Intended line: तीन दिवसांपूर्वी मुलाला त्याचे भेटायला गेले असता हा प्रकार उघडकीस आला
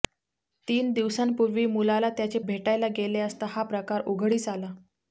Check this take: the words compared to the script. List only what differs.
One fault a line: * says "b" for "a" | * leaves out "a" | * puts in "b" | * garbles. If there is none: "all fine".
all fine